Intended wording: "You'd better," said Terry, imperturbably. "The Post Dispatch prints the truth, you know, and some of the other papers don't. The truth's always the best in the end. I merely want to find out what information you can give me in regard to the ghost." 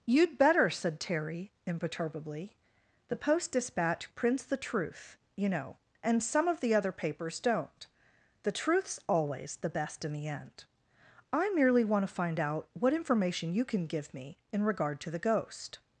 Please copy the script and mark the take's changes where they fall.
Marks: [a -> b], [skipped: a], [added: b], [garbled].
"You'd better," said Terry, imperturbably. "The Post Dispatch prints the truth, you know, and some of the other papers don't. The truth's always the best in the end. I merely want to find out what information you can give me in regard to the ghost."